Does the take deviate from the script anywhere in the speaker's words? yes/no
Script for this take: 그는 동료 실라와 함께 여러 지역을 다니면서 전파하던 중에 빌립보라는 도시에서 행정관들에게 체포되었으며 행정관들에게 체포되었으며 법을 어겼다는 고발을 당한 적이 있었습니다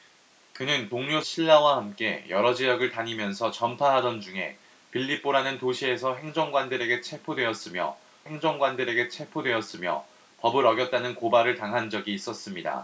no